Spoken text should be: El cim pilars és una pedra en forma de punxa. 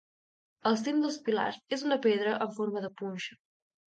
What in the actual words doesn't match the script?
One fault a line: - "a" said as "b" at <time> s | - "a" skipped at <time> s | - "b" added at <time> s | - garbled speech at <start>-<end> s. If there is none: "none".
- "dels" added at 1.0 s